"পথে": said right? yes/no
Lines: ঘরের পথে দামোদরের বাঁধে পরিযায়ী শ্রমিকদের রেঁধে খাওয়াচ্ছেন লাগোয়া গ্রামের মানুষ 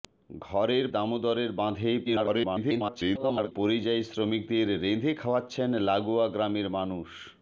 no